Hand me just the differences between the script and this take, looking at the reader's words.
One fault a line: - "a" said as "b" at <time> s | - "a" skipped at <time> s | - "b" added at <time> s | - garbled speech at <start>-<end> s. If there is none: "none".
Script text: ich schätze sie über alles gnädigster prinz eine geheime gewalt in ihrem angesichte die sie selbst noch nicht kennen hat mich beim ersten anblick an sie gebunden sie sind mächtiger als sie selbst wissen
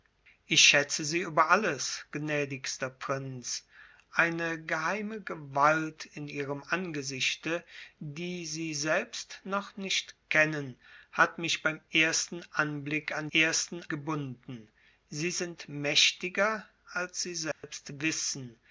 - "sie" said as "ersten" at 13.3 s